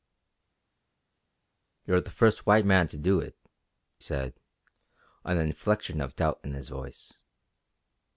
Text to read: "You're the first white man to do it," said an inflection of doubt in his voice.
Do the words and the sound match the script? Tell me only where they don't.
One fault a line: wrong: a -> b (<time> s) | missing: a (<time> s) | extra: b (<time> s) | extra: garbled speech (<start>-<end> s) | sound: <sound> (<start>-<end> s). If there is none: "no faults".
no faults